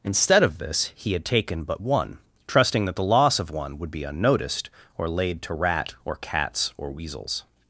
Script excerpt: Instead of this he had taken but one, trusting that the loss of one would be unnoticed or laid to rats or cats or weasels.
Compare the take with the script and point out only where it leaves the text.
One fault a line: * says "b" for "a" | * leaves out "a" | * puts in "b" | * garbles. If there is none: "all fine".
* says "rat" for "rats"